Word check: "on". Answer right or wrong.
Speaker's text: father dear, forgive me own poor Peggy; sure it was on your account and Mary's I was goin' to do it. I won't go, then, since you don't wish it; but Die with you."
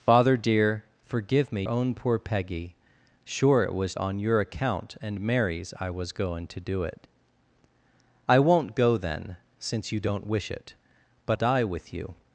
right